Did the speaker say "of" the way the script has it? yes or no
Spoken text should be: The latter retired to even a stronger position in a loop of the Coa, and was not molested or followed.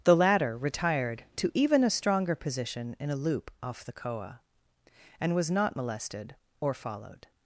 no